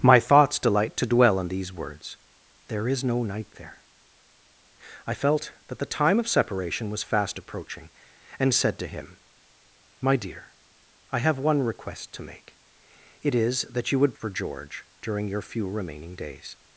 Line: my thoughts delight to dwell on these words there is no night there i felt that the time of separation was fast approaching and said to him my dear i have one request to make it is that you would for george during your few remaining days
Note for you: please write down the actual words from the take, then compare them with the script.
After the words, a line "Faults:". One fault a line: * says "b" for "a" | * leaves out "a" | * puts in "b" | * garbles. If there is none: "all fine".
my thoughts delight to dwell on these words there is no night there i felt that the time of separation was fast approaching and said to him my dear i have one request to make it is that you would for george during your few remaining days
Faults:
all fine